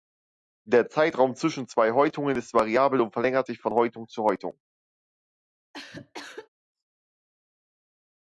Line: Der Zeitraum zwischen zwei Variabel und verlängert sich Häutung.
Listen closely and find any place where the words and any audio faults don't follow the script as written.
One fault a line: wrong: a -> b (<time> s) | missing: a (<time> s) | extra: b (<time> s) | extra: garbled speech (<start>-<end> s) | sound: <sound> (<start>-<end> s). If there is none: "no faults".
extra: Häutungen ist (1.9 s)
extra: von Häutung zu (3.6 s)
sound: cough (5.7-6.5 s)